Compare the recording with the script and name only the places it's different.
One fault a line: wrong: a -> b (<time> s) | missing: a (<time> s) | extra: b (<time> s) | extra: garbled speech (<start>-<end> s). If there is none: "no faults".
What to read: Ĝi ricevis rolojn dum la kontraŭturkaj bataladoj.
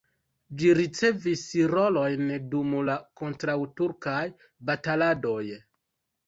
no faults